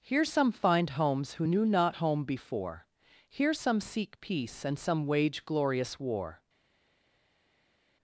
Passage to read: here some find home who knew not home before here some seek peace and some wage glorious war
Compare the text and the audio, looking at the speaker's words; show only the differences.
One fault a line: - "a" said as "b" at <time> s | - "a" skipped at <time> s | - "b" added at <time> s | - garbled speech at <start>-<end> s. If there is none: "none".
- "home" said as "homes" at 0.9 s